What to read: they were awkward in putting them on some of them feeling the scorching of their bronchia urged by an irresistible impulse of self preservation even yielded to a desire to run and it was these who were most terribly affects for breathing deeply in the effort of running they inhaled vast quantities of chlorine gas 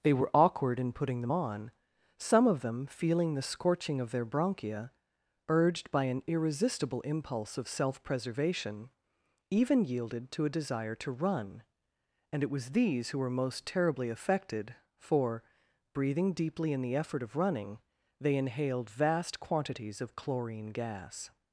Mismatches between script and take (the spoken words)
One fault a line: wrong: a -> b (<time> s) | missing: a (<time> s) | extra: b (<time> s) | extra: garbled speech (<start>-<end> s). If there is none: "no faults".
wrong: affects -> affected (14.1 s)